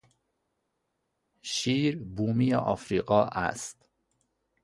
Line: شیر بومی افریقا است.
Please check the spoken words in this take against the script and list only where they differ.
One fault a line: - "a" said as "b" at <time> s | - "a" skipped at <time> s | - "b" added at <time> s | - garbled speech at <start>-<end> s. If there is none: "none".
none